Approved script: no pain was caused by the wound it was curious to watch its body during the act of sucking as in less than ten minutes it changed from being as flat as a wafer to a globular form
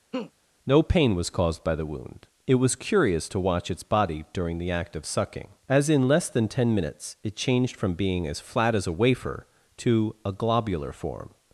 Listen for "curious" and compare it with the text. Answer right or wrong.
right